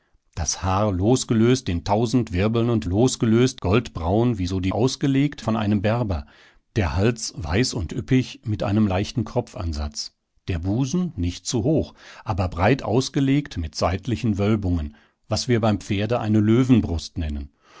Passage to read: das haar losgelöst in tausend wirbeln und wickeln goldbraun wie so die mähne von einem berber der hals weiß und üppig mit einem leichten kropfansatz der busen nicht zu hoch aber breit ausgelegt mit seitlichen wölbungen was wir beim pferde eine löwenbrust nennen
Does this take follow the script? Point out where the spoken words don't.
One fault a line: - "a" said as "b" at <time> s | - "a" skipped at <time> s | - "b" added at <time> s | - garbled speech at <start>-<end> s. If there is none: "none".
- "wickeln" said as "losgelöst" at 2.8 s
- "mähne" said as "ausgelegt" at 4.7 s